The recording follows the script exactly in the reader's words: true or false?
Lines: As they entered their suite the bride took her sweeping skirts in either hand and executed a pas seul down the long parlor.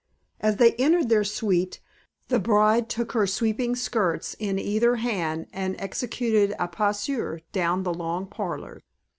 true